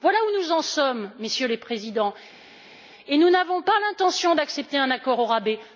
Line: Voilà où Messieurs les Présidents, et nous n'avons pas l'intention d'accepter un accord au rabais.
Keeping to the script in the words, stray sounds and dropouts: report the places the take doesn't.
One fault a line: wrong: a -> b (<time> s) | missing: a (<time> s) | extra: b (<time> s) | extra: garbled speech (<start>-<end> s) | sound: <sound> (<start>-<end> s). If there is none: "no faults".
extra: nous en sommes (0.4 s)